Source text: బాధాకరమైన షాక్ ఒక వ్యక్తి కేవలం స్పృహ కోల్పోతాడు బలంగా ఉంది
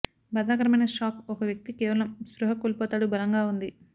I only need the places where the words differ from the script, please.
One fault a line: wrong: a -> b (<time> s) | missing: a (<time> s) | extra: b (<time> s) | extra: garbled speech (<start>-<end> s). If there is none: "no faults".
no faults